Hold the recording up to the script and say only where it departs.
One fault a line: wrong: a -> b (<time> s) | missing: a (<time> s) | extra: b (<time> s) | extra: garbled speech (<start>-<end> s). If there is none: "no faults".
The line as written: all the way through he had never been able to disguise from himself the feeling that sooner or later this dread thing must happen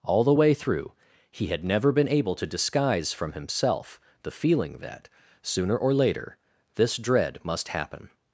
missing: thing (7.4 s)